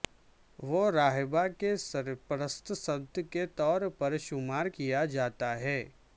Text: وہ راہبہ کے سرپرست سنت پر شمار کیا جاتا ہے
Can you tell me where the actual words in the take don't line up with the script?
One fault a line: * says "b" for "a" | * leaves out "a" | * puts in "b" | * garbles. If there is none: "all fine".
* puts in "کے طور"